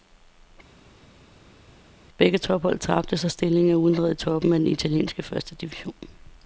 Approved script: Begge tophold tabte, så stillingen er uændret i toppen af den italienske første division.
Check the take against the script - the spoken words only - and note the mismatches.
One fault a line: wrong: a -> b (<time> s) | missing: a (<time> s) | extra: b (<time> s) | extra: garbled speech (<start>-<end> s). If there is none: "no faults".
no faults